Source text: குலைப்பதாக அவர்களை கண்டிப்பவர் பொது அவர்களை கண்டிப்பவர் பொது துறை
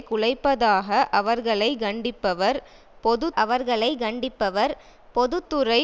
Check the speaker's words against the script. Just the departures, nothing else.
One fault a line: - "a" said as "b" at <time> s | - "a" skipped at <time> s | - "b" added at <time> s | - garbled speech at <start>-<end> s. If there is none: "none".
none